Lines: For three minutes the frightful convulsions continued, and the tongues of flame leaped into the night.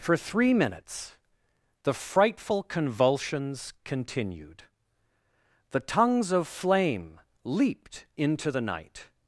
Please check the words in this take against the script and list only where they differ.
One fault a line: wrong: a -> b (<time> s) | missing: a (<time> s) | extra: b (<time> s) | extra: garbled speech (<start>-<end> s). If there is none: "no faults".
missing: and (4.6 s)